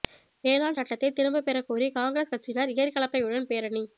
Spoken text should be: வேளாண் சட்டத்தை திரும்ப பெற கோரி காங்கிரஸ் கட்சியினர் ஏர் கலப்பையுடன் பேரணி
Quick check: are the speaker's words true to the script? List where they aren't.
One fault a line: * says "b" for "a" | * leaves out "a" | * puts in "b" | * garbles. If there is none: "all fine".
all fine